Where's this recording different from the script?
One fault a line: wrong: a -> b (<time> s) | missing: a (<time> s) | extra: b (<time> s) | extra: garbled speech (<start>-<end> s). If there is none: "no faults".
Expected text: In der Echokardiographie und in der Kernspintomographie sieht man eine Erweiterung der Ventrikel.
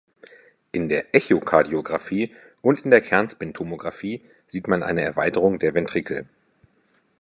no faults